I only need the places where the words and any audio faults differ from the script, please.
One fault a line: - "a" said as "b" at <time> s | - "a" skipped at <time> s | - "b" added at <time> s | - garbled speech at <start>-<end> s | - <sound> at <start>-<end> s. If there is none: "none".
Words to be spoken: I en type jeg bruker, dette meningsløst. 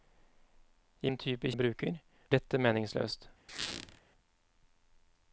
- squeak at 3.5-4.0 s